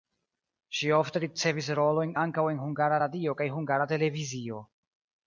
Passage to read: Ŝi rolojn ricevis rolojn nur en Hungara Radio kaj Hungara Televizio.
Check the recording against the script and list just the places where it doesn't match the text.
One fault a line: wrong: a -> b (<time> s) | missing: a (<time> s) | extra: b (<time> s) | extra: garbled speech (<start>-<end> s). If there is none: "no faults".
wrong: rolojn -> ofte (1.0 s)
wrong: nur -> ankaŭ (2.2 s)